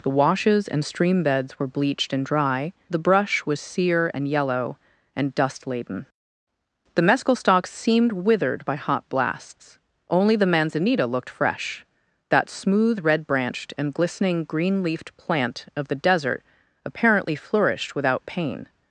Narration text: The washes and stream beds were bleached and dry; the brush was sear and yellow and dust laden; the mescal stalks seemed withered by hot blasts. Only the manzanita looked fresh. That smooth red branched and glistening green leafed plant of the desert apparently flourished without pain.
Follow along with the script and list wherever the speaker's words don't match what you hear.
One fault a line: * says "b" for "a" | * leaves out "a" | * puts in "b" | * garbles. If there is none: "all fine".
all fine